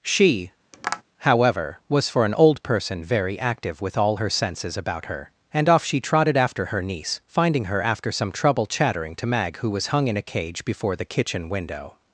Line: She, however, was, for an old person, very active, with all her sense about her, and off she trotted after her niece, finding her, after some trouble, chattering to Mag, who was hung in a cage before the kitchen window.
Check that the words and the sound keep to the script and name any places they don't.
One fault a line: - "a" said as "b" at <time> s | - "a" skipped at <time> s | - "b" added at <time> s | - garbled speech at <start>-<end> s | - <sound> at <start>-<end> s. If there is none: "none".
- tap at 0.7-1.0 s
- "sense" said as "senses" at 4.3 s